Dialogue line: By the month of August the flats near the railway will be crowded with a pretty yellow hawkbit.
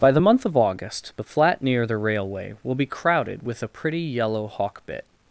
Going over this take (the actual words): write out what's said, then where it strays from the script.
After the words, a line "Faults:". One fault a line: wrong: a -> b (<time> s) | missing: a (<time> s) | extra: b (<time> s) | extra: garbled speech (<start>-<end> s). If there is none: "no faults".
By the month of August the flat near the railway will be crowded with a pretty yellow hawkbit.
Faults:
wrong: flats -> flat (1.2 s)